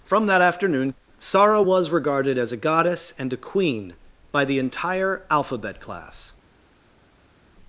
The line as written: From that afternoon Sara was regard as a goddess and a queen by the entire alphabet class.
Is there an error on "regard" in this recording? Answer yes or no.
yes